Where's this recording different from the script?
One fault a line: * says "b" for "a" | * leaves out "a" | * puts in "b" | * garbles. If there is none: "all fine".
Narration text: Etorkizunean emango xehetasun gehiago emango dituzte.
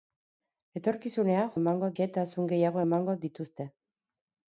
all fine